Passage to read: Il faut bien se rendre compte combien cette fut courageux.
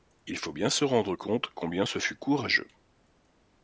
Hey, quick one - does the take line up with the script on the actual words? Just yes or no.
no